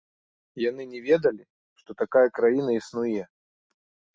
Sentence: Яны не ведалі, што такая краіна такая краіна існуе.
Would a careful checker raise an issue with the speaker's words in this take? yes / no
yes